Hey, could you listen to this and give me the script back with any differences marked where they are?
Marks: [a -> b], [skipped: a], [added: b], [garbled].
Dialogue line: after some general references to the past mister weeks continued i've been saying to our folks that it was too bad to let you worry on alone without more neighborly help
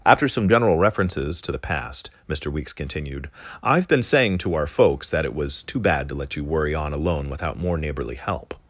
after some general references to the past mister weeks continued i've been saying to our folks that it was too bad to let you worry on alone without more neighborly help